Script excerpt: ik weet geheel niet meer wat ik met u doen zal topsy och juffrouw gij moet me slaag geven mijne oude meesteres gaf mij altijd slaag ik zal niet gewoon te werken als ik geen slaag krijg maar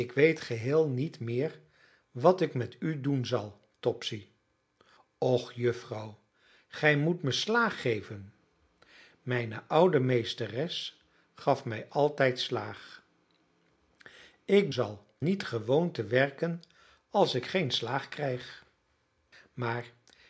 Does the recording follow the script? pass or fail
pass